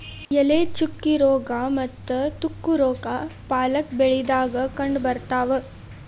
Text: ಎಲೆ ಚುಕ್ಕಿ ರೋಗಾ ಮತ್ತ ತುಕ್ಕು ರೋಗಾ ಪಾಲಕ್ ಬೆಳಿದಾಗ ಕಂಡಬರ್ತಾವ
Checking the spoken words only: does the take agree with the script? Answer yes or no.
yes